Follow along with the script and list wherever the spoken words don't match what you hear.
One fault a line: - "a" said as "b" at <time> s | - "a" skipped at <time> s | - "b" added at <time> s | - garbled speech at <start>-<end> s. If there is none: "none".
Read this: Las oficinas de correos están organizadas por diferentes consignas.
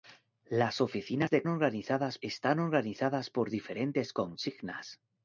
- "correos" said as "organizadas" at 1.5 s